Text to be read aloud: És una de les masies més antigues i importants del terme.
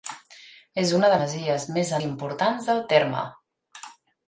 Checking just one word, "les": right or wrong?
wrong